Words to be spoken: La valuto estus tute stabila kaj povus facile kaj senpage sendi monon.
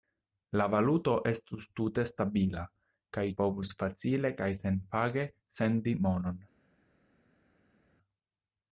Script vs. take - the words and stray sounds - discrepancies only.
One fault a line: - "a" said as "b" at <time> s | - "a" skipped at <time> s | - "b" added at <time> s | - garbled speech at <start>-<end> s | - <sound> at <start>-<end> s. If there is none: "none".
none